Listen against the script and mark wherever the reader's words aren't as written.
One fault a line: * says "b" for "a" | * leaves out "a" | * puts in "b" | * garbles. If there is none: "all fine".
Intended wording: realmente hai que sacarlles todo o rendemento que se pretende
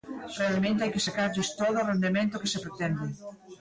all fine